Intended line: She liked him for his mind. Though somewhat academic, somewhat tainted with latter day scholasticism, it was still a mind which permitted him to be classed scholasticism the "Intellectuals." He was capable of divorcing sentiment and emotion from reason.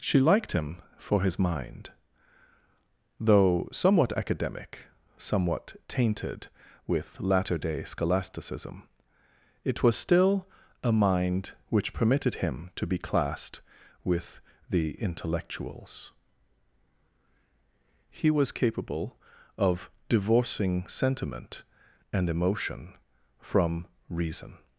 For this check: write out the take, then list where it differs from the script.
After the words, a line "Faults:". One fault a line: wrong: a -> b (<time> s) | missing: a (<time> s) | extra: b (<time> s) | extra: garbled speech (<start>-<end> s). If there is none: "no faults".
She liked him for his mind. Though somewhat academic, somewhat tainted with latter day scholasticism, it was still a mind which permitted him to be classed with the "Intellectuals." He was capable of divorcing sentiment and emotion from reason.
Faults:
wrong: scholasticism -> with (14.0 s)